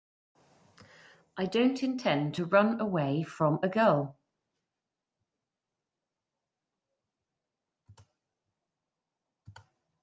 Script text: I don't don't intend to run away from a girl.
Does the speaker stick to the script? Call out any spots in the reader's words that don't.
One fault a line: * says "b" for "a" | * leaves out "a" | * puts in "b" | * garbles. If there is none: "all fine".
* leaves out "don't"